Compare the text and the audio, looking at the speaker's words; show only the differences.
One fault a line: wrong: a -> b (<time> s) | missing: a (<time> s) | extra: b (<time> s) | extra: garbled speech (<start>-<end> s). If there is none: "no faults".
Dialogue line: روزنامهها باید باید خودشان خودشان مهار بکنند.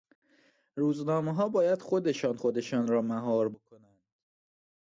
wrong: باید -> خودشان (1.8 s)
wrong: خودشان -> را (2.9 s)